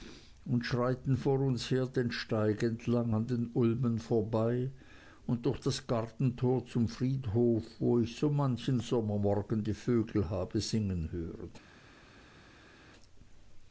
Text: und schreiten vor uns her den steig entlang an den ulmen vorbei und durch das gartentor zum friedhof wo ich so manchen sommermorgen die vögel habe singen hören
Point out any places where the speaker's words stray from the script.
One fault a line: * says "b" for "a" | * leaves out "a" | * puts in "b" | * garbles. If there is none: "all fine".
all fine